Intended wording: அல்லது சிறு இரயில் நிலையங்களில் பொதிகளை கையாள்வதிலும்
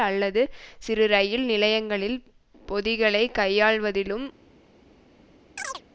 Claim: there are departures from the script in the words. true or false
false